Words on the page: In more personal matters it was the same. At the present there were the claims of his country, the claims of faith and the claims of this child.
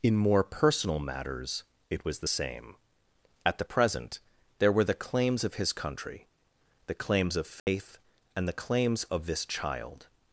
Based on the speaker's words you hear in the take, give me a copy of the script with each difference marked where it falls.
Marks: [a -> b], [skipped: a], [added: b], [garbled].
In more personal matters it was the same. At the present there were the claims of his country, the claims of faith and the claims of this child.